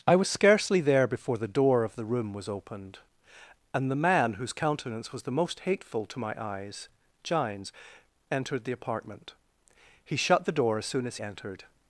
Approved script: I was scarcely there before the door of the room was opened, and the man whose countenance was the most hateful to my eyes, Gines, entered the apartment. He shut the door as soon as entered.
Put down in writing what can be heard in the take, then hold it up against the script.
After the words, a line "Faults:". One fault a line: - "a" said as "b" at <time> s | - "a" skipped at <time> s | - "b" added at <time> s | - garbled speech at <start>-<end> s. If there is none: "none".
I was scarcely there before the door of the room was opened, and the man whose countenance was the most hateful to my eyes, Gines, entered the apartment. He shut the door as soon as entered.
Faults:
none